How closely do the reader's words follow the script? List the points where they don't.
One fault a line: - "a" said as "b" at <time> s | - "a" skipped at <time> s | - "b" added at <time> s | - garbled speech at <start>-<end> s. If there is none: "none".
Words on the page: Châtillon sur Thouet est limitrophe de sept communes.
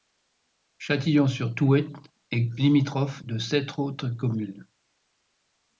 - "autres" added at 3.8 s